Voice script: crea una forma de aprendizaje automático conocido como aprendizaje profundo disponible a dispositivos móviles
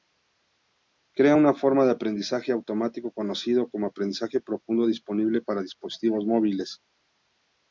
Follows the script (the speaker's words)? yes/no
no